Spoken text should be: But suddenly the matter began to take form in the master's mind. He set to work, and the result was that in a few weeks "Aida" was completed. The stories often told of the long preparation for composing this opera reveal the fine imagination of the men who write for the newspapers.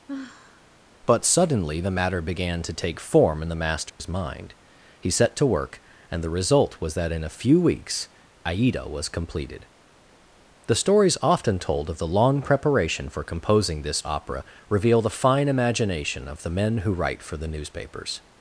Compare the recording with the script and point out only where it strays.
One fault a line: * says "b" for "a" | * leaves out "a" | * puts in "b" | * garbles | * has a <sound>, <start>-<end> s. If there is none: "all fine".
* has a sigh, 0.1-0.8 s
* has a dropout, 3.9-4.0 s